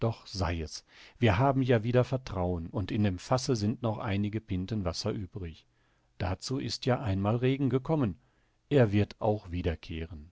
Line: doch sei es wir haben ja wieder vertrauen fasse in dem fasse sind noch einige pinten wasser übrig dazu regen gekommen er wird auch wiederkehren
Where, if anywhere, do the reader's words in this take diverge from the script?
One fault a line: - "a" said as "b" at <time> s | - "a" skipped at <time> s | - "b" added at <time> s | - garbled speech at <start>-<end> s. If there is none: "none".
- "fasse" said as "und" at 2.7 s
- "ist ja einmal" added at 6.6 s